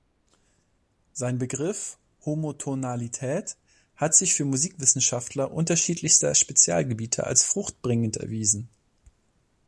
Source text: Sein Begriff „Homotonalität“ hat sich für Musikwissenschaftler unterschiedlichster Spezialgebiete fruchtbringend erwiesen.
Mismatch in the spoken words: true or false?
true